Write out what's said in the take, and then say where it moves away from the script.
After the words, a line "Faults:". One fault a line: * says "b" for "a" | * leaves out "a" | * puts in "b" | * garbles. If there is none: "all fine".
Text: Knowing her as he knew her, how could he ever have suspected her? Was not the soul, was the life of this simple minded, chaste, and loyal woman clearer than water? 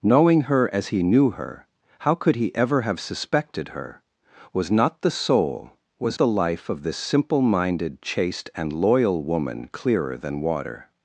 Knowing her as he knew her, how could he ever have suspected her? Was not the soul, was the life of this simple minded, chaste, and loyal woman clearer than water?
Faults:
all fine